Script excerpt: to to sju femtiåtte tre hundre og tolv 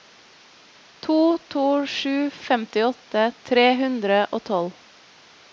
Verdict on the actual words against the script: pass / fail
pass